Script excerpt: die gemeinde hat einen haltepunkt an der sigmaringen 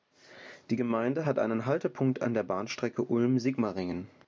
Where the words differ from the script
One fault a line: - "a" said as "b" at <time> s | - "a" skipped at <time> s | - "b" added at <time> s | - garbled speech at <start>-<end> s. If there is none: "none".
- "bahnstrecke ulm" added at 2.4 s